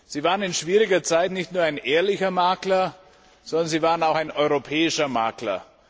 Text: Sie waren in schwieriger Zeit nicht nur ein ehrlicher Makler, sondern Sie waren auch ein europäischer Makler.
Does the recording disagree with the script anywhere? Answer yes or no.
no